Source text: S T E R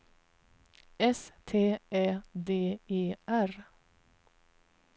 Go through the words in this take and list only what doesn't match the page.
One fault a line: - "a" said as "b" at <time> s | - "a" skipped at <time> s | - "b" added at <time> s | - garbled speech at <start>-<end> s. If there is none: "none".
- "Ä D" added at 1.9 s